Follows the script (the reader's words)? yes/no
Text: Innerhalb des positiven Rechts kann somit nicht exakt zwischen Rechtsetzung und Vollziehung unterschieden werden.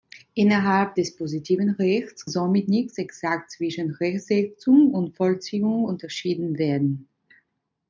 no